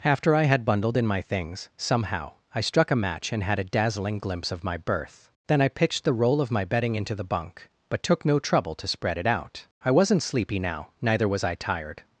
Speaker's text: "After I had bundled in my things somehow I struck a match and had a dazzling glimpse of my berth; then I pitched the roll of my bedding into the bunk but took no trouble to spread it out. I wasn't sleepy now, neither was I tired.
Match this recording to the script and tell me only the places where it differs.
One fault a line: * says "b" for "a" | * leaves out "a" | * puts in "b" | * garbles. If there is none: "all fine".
all fine